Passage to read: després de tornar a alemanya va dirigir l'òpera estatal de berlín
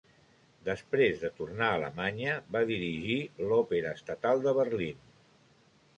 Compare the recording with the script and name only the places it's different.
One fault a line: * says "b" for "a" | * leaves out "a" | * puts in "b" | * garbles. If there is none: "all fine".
all fine